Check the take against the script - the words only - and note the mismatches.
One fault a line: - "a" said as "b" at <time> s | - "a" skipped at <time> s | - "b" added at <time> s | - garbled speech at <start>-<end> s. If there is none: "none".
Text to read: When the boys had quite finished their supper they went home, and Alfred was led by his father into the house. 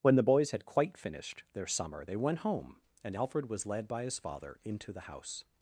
- "supper" said as "summer" at 1.7 s